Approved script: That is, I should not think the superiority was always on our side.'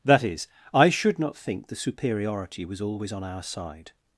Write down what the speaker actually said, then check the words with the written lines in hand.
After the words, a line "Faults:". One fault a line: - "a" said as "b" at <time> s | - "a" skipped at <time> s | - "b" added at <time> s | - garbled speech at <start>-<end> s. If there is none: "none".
That is, I should not think the superiority was always on our side.'
Faults:
none